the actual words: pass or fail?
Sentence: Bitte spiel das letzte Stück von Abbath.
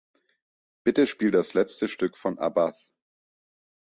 pass